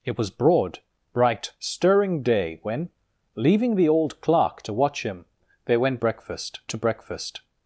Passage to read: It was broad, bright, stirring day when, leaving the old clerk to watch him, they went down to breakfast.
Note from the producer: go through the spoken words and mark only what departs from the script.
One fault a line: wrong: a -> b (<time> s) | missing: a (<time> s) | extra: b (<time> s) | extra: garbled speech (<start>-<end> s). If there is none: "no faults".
wrong: down -> breakfast (6.0 s)